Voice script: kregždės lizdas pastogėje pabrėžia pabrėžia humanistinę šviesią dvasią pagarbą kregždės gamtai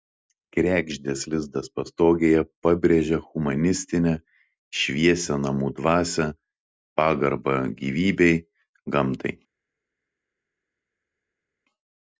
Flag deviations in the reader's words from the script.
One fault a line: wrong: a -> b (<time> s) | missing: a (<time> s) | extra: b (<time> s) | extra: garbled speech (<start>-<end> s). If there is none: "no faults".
missing: pabrėžia (3.2 s)
extra: namų (5.5 s)
wrong: kregždės -> gyvybei (7.8 s)